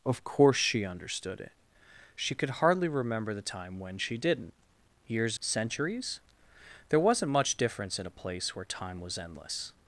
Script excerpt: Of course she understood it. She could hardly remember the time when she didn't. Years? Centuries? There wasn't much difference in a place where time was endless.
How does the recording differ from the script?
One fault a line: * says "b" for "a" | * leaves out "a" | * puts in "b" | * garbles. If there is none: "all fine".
all fine